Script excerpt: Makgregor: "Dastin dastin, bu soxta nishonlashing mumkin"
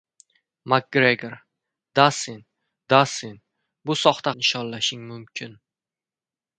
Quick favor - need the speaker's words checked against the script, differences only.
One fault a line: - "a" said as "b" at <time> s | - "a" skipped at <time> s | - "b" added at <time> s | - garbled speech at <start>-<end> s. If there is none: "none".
none